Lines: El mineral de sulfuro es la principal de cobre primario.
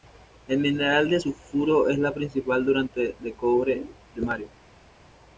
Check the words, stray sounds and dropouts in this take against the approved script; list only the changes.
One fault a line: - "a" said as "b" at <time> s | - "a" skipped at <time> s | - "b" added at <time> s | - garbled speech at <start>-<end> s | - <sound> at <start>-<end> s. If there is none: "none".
- "fuente" added at 2.6 s